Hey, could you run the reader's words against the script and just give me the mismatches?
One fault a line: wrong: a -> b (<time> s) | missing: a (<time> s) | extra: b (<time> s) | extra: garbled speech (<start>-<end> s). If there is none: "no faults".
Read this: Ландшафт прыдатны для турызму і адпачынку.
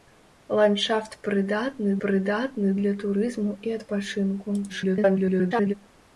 extra: прыдатны (2.1 s)
extra: garbled speech (4.7-5.7 s)